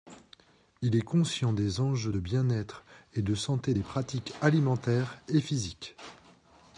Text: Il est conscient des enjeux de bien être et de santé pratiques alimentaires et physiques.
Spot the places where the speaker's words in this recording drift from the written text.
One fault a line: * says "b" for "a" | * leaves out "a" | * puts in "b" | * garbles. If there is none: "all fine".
* puts in "des"